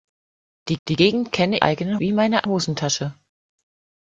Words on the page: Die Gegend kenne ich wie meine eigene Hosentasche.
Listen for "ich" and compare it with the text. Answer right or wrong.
wrong